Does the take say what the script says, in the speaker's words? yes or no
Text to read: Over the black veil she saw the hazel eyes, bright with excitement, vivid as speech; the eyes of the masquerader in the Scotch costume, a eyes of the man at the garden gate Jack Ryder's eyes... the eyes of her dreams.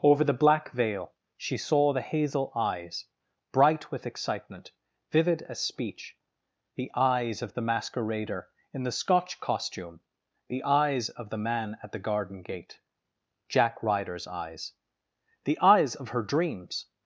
no